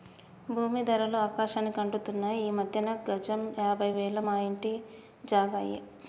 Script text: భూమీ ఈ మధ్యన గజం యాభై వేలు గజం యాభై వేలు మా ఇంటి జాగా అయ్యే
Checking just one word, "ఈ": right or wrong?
wrong